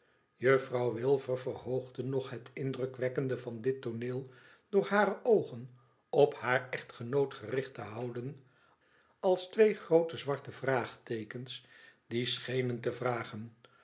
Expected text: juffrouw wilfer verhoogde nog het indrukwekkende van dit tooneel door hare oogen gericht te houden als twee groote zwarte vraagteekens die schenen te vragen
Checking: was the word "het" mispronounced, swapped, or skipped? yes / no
no